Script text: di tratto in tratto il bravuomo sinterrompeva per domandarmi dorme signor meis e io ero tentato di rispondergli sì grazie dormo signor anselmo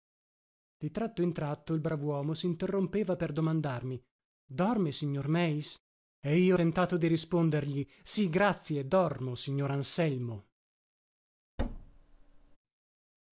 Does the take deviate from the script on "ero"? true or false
true